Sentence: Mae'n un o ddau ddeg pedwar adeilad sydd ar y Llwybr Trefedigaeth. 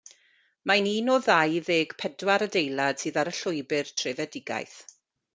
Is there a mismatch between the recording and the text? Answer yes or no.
no